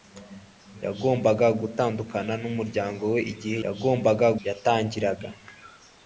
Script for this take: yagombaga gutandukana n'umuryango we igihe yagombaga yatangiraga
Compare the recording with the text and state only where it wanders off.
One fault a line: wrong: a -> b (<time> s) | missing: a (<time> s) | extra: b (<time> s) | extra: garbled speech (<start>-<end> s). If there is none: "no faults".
no faults